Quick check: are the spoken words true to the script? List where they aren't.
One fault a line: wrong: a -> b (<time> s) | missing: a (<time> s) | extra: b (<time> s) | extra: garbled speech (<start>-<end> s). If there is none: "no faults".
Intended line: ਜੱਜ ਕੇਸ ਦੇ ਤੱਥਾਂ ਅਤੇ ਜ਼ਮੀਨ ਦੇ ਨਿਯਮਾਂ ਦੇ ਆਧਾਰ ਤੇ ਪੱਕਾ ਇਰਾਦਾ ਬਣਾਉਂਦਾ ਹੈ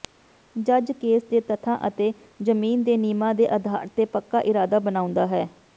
no faults